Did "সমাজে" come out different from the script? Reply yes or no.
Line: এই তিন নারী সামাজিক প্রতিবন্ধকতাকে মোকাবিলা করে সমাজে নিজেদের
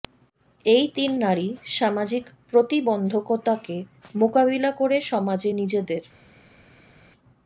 no